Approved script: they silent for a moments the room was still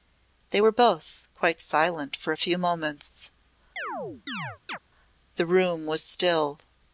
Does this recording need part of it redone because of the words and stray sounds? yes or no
yes